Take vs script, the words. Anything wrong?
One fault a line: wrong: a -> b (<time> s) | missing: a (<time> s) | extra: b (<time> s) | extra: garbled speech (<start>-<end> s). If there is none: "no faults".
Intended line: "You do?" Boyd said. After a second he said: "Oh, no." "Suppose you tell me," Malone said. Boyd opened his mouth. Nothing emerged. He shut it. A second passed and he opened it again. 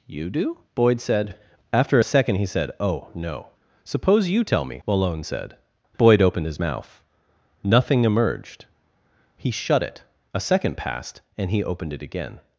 no faults